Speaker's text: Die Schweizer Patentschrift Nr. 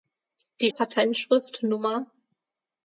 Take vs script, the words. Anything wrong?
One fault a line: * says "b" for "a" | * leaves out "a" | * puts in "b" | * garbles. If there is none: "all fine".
* leaves out "Schweizer"